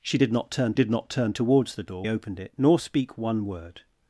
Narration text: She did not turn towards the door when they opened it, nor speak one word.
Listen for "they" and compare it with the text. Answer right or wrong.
wrong